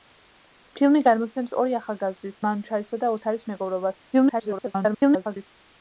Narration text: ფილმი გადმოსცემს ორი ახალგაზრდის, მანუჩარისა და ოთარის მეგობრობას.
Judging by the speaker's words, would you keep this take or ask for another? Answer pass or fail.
fail